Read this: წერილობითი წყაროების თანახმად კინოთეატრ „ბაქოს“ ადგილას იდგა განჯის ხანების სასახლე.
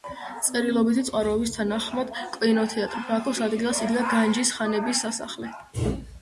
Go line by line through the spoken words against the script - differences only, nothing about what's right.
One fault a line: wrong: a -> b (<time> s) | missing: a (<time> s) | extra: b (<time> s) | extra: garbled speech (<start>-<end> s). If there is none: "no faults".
no faults